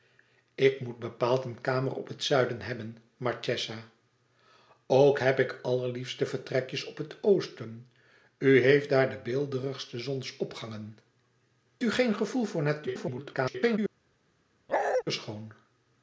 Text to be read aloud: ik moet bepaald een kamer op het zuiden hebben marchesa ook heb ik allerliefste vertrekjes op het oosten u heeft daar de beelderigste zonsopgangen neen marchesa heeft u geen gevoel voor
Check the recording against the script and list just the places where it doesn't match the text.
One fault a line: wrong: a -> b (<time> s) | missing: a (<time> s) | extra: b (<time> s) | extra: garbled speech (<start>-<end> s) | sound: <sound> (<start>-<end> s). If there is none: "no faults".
missing: neen marchesa heeft (11.0 s)
extra: garbled speech (12.9-13.8 s)
sound: bark (14.7-15.0 s)